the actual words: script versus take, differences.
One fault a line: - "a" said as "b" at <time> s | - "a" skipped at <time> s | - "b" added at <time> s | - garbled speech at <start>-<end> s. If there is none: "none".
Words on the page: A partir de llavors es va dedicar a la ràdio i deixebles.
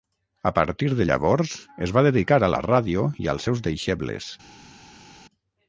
- "als seus" added at 3.3 s